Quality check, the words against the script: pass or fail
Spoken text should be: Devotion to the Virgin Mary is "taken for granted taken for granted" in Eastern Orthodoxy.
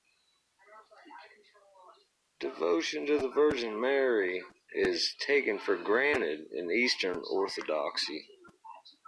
fail